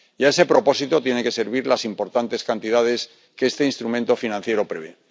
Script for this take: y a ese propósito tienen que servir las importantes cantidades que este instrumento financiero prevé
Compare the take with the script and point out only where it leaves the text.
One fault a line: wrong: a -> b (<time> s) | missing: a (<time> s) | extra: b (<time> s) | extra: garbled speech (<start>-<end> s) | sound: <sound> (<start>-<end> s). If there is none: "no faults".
no faults